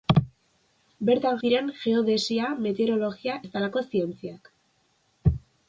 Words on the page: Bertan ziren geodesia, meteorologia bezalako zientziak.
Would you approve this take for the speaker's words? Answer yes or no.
yes